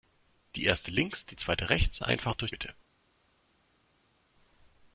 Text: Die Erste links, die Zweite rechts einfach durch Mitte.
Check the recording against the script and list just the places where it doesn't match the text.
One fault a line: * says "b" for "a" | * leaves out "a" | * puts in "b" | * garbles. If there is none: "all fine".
all fine